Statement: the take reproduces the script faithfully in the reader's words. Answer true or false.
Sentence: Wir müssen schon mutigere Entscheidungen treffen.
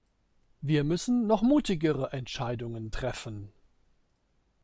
false